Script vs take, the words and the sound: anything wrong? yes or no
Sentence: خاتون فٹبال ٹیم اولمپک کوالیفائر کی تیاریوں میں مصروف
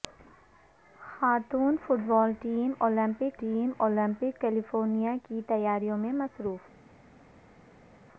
yes